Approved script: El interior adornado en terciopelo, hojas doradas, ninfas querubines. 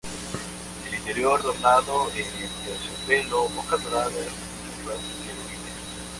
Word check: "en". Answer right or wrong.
right